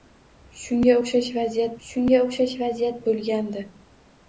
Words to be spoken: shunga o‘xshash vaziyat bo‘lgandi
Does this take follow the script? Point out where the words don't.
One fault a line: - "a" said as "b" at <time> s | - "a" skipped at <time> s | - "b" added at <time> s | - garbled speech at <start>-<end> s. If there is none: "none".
- "shunga o‘xshash vaziyat" added at 1.9 s